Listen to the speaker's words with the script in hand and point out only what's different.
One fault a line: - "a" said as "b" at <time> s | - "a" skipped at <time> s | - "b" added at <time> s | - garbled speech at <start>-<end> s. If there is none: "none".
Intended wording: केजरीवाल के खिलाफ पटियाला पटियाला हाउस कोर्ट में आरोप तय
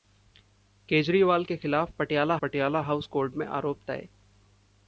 none